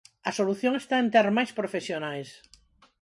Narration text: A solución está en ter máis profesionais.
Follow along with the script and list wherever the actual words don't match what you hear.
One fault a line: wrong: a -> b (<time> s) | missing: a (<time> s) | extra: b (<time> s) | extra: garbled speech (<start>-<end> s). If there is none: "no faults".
no faults